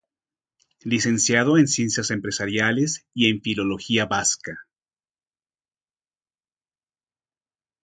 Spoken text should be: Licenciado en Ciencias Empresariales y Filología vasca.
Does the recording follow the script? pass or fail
fail